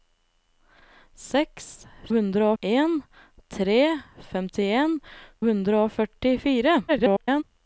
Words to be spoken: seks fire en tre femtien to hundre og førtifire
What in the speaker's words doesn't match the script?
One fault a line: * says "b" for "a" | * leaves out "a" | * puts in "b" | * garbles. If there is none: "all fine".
* says "hundre" for "fire"
* leaves out "to"
* garbles